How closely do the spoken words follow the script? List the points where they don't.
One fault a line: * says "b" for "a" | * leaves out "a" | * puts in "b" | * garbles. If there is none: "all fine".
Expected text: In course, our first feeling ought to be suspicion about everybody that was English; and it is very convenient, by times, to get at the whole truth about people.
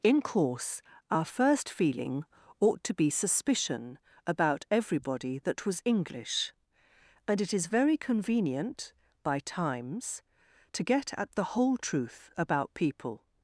all fine